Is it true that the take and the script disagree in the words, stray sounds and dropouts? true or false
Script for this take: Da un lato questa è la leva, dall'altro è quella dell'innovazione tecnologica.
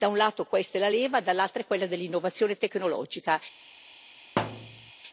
true